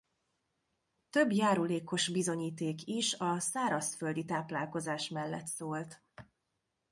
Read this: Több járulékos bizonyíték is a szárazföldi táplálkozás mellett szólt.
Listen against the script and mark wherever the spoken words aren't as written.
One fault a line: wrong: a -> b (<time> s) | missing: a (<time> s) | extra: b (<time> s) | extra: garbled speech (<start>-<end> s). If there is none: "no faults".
no faults